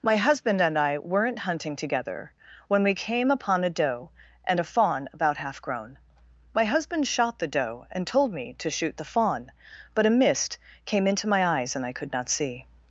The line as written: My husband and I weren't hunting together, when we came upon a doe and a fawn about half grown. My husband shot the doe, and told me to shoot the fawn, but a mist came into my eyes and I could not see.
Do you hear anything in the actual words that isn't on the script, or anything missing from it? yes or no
no